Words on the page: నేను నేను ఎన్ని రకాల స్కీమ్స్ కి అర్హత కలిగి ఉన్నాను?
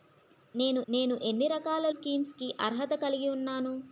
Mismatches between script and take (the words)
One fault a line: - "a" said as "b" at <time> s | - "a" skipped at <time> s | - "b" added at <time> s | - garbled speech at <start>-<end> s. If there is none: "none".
none